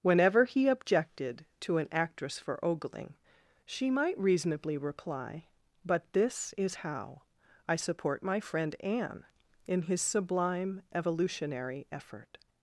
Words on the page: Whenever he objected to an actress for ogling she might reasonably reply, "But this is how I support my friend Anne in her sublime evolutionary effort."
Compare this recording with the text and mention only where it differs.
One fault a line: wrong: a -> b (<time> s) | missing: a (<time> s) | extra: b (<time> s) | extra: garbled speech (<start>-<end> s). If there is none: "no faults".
wrong: her -> his (9.8 s)